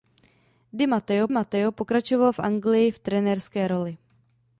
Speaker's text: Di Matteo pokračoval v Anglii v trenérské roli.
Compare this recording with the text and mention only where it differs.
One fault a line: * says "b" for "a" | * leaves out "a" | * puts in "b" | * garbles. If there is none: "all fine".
* puts in "Matteo"